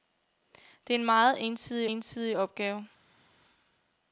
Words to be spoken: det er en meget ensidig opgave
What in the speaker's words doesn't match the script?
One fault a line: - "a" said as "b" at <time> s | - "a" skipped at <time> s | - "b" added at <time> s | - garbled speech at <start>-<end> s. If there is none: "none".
- "ensidig" added at 1.9 s